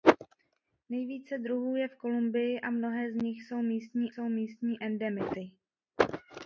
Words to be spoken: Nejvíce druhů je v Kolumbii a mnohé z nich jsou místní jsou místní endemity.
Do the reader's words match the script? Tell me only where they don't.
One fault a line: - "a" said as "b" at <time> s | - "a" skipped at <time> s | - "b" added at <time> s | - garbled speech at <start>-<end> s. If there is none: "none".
none